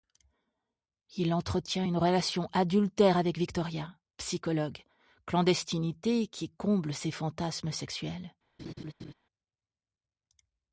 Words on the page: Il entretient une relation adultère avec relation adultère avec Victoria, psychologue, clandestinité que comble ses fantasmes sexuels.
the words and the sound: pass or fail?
fail